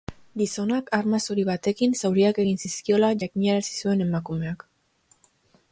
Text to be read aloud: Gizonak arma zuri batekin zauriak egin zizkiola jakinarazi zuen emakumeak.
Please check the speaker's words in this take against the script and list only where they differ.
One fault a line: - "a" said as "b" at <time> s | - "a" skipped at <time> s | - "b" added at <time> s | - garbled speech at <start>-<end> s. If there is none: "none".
none